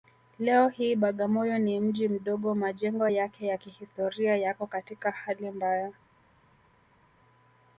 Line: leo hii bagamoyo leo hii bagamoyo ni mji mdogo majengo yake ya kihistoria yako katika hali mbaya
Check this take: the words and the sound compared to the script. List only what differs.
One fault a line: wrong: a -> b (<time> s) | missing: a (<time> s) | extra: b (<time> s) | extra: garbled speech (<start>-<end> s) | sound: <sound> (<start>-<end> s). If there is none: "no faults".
missing: leo hii bagamoyo (1.6 s)